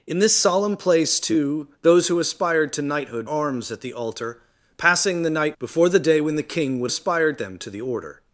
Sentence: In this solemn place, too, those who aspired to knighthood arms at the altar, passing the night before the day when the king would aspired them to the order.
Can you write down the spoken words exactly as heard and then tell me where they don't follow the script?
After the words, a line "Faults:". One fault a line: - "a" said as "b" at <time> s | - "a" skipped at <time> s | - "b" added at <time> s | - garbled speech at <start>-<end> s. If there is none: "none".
In this solemn place, too, those who aspired to knighthood arms at the altar, passing the night before the day when the king would aspired them to the order.
Faults:
none